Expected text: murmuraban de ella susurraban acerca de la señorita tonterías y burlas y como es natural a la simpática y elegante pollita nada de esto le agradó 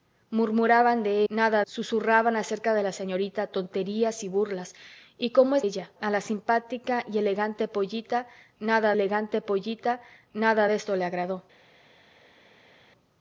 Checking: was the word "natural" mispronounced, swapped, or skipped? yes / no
yes